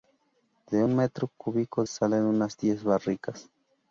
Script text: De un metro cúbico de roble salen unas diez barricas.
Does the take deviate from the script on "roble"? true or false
true